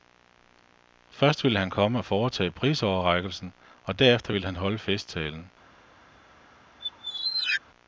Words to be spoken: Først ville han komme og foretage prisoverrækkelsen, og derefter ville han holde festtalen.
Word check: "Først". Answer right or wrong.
right